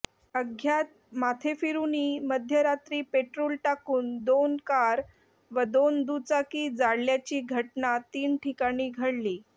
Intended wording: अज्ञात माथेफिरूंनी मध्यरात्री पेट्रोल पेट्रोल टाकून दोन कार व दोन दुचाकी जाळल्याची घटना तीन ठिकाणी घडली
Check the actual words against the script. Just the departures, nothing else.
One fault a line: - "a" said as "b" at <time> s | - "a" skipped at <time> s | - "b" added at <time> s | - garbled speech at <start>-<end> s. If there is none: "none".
- "पेट्रोल" skipped at 3.5 s